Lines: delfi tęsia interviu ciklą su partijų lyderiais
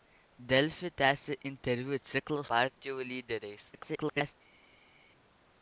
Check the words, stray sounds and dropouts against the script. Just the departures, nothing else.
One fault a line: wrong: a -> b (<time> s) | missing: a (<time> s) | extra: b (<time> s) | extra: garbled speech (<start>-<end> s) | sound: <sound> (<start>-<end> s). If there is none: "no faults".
missing: su (2.4 s)
extra: garbled speech (3.7-4.3 s)